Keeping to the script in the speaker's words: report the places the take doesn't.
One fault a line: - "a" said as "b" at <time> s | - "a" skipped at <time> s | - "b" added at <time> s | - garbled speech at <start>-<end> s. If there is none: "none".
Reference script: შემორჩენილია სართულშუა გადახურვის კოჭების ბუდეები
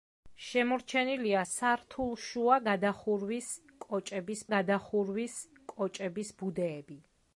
- "გადახურვის კოჭების" added at 4.5 s